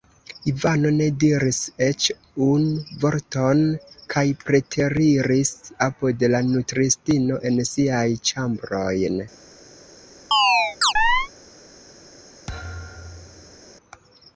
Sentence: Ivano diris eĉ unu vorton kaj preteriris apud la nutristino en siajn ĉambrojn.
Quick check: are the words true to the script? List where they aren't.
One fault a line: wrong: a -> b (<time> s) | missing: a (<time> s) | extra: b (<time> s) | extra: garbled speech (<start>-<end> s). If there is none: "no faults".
extra: ne (0.9 s)